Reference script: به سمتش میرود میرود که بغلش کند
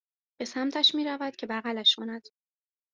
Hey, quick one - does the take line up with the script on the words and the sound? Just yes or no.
no